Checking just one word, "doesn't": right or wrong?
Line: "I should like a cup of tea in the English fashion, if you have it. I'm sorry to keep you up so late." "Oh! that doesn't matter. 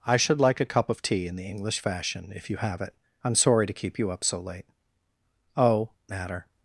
wrong